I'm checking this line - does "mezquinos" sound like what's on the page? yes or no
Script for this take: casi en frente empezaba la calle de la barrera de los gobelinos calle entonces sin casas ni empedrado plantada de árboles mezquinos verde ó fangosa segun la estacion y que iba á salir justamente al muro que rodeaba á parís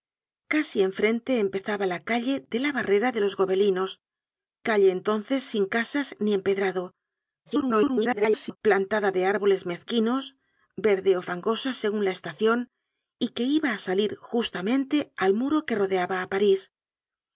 yes